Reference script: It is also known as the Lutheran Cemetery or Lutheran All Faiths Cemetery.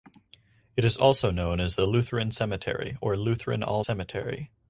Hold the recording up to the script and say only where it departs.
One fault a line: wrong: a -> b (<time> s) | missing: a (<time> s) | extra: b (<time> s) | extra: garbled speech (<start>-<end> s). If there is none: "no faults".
missing: Faiths (3.8 s)